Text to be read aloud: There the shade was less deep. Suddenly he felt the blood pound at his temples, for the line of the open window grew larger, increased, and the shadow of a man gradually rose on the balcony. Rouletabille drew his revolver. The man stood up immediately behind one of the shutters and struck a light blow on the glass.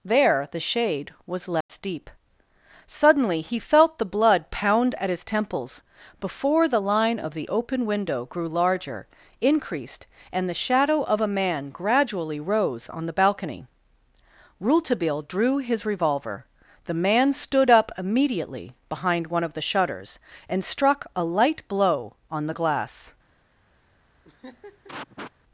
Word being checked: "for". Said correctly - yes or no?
no